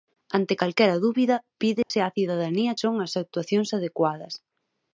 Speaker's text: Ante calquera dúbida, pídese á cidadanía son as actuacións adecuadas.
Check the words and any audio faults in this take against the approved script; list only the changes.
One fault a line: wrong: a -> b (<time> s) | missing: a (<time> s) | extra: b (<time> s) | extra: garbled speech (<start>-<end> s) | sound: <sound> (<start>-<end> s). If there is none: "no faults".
sound: dropout (1.8-1.9 s)